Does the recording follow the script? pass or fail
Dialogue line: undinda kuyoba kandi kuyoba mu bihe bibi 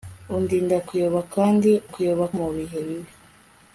pass